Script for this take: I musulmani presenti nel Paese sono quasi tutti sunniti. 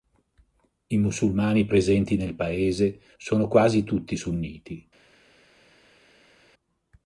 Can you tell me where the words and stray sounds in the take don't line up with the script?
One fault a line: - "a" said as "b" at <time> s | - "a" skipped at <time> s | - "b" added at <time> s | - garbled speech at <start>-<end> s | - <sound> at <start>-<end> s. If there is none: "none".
none